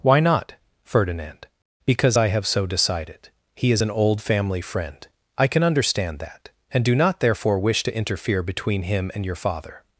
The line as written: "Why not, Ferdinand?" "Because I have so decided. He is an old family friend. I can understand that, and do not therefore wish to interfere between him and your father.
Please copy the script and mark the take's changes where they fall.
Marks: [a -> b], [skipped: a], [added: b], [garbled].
"Why not, Ferdinand?" "Because I have so decided. He is an old family friend. I can understand that, and do not therefore wish to interfere between him and your father.